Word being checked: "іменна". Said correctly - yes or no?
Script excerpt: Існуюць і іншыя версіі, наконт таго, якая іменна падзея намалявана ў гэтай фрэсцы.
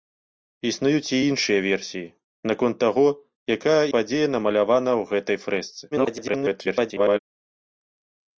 no